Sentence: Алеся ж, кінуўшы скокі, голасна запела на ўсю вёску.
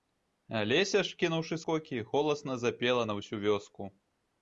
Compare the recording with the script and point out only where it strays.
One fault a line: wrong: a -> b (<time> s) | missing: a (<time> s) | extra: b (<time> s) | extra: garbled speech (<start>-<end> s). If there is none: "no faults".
no faults